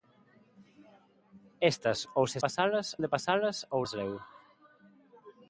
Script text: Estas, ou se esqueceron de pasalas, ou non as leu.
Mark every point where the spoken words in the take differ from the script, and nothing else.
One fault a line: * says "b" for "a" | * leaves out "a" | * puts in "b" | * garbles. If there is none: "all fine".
* says "pasalas" for "esqueceron"
* leaves out "non"